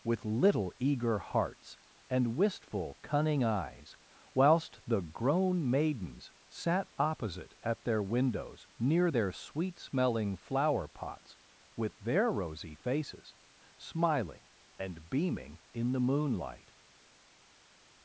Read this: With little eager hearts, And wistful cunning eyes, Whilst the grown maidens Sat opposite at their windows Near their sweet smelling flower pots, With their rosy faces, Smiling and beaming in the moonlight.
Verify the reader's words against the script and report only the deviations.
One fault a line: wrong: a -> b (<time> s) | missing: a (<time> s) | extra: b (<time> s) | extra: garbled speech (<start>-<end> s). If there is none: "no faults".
no faults